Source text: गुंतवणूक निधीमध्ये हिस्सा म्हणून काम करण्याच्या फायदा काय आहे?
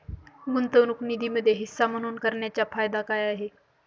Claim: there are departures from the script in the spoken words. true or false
true